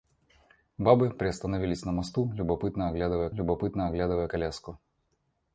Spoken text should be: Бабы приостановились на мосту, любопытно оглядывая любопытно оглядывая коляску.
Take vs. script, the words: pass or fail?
pass